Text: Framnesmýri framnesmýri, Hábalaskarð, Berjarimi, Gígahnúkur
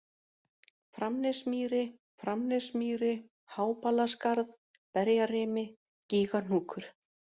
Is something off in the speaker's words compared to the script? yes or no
no